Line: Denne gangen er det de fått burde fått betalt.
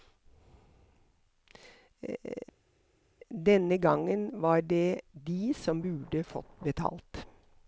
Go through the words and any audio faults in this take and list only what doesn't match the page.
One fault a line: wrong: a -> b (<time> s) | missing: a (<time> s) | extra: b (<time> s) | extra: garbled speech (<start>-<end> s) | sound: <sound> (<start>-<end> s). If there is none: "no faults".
wrong: er -> var (4.4 s)
wrong: fått -> som (5.5 s)